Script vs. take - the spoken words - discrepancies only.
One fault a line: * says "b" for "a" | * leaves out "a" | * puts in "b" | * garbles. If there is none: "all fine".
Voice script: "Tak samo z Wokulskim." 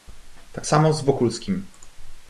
all fine